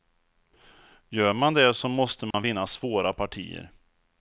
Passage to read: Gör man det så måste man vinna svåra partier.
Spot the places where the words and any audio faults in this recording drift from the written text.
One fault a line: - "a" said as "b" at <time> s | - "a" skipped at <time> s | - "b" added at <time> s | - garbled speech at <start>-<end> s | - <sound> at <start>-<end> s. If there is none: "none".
- dropout at 2.3-2.3 s